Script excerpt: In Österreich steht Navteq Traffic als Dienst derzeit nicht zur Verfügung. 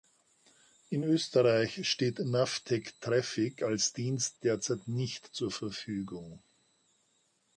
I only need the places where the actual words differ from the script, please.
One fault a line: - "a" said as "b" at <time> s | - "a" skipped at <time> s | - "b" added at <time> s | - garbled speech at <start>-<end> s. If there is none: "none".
none